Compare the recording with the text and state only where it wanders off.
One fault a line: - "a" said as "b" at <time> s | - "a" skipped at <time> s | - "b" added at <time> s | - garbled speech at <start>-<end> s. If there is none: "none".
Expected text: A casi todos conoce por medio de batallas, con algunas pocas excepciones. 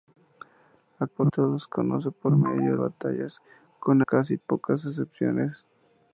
- "casi" said as "por" at 1.0 s
- "de" skipped at 2.8 s
- "algunas" said as "casi" at 4.0 s